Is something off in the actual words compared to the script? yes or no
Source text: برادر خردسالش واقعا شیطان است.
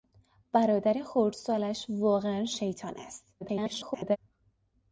yes